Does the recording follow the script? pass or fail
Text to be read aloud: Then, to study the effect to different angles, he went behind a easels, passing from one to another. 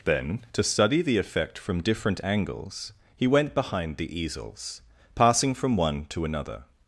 fail